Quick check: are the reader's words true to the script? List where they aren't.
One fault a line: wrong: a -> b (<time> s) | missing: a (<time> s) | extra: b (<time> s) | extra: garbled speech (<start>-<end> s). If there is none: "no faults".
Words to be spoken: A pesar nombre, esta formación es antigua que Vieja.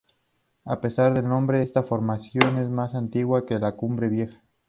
extra: del (1.1 s)
extra: más (2.7 s)
extra: la Cumbre (3.6 s)